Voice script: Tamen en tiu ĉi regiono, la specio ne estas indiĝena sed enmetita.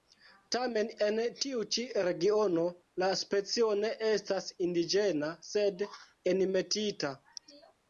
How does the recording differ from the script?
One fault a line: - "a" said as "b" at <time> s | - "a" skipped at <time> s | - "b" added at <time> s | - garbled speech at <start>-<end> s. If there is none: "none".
none